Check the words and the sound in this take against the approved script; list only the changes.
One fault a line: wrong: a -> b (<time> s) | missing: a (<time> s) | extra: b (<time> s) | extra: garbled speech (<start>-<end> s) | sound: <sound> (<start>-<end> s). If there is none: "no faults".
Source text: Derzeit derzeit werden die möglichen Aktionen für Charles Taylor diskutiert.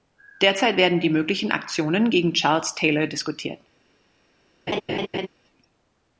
missing: derzeit (0.8 s)
wrong: für -> gegen (2.1 s)
sound: laugh (4.7-5.3 s)